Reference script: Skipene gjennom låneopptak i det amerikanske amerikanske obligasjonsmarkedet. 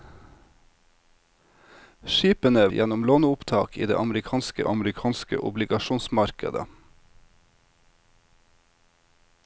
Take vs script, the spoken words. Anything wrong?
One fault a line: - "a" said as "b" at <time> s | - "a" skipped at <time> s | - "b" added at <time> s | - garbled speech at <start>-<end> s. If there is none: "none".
none